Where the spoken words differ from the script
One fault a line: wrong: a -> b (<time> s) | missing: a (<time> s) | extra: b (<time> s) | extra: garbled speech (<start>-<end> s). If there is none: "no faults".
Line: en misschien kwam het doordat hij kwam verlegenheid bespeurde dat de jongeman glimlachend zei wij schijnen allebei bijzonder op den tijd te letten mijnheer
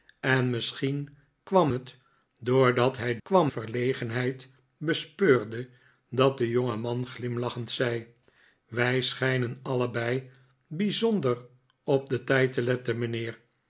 no faults